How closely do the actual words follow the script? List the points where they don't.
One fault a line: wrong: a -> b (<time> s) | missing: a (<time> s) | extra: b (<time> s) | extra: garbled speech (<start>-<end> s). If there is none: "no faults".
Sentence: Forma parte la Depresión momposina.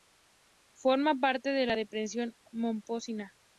extra: de (1.5 s)